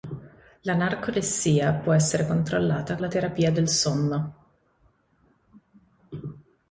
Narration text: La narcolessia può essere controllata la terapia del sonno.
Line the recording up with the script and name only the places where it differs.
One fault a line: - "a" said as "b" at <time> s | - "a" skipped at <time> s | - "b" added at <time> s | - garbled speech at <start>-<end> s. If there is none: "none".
none